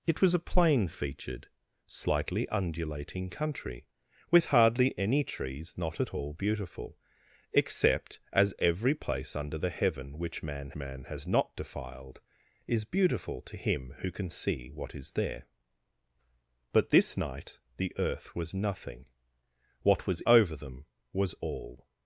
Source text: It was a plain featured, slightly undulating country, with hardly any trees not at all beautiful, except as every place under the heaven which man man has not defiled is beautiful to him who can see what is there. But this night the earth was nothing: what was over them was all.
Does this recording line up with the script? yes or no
yes